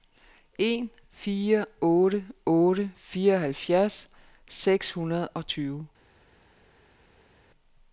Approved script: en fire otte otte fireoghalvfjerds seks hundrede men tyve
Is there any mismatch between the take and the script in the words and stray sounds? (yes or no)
yes